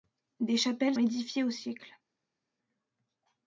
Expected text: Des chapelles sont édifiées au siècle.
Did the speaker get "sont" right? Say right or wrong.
wrong